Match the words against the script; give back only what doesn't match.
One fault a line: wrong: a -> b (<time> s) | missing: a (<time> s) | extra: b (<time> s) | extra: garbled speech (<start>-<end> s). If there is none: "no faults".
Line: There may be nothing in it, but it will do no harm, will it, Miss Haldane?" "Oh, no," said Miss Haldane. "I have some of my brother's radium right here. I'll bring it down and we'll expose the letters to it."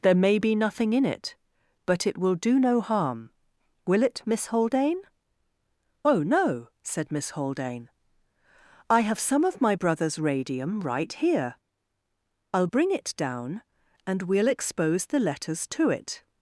no faults